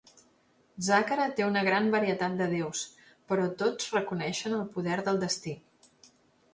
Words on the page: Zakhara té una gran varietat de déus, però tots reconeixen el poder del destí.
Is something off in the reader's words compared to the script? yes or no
no